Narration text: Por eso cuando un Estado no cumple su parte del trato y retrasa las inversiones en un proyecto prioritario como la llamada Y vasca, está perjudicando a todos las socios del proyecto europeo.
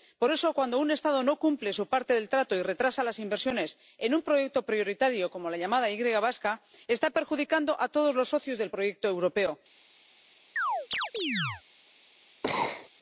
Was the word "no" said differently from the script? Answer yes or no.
no